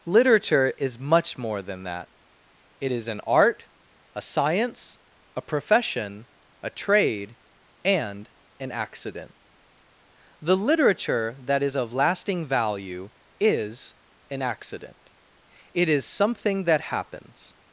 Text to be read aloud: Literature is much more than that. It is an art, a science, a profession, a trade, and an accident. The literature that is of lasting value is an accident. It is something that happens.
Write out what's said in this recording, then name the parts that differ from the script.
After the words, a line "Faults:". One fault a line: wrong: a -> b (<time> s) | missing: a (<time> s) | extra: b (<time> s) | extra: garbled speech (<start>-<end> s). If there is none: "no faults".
Literature is much more than that. It is an art, a science, a profession, a trade, and an accident. The literature that is of lasting value is an accident. It is something that happens.
Faults:
no faults